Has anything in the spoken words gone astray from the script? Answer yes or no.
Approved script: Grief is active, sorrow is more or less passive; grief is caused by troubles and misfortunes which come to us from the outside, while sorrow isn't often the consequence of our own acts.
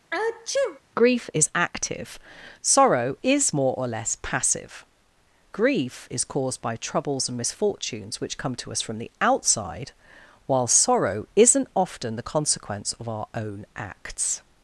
no